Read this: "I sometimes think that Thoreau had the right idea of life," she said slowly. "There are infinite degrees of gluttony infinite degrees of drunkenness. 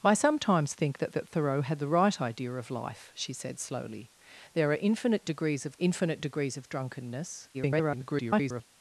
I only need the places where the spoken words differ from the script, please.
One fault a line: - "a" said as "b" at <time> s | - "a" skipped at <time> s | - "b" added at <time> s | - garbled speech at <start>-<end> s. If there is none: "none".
- "that" added at 1.1 s
- "gluttony" skipped at 5.7 s
- garbled speech at 7.5-8.7 s